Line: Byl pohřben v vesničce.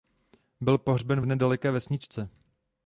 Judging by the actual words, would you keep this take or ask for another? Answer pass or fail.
fail